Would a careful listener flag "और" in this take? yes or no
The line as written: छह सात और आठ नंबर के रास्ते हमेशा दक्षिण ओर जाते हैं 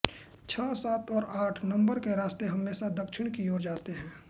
no